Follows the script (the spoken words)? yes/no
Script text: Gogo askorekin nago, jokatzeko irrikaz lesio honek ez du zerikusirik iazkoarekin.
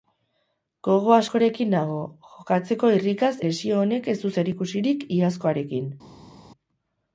yes